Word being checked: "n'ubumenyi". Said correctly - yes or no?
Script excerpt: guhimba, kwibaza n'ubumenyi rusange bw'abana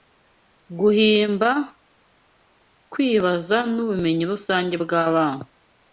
yes